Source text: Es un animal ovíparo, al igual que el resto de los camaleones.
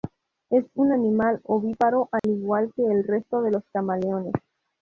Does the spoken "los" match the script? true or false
true